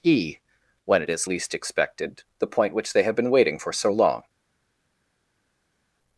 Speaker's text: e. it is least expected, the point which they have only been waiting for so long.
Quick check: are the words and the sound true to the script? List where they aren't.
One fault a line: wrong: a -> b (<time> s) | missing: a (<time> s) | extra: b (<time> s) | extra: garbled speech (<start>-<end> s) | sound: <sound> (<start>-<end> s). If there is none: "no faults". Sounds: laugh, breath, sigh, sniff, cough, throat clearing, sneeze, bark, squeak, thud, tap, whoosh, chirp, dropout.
extra: when (0.8 s)
missing: only (3.1 s)